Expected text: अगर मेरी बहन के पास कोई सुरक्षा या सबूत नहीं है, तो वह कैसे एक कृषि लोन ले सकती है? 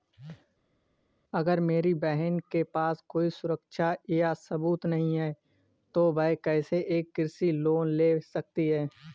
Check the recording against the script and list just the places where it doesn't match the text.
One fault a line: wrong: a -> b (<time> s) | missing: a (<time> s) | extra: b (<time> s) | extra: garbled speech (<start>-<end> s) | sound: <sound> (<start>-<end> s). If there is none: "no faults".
no faults